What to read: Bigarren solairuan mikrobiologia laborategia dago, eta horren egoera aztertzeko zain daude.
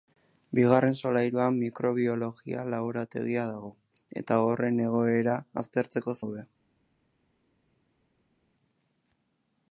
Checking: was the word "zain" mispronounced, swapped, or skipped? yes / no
yes